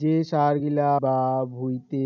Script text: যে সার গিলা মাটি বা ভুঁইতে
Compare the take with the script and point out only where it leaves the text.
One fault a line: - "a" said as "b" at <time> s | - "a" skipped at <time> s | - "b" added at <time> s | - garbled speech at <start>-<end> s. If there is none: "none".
- "মাটি" skipped at 0.9 s